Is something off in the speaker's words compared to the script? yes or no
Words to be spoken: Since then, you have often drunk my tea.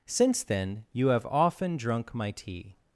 no